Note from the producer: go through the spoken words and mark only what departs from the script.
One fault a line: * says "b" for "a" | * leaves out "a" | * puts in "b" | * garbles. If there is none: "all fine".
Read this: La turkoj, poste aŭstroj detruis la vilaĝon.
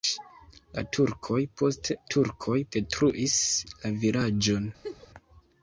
* says "turkoj" for "aŭstroj"